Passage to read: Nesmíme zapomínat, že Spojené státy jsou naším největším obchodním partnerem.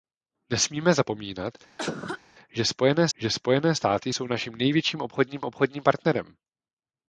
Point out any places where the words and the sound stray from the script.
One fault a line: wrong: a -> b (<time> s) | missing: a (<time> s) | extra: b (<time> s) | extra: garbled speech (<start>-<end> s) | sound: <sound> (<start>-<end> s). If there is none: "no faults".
sound: cough (1.8-2.2 s)
extra: že Spojené (3.1 s)
extra: obchodním (5.4 s)